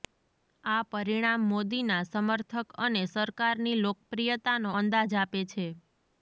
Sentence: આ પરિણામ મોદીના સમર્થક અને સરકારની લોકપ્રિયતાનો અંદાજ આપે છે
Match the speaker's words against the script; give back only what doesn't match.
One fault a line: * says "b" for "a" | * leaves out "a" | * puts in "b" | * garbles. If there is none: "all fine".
all fine